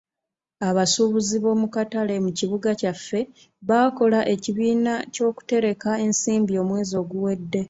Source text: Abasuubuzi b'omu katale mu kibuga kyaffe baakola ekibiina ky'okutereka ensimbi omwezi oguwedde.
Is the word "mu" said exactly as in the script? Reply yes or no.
yes